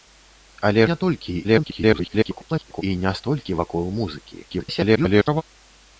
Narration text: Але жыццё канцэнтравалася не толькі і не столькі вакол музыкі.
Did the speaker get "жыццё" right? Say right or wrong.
wrong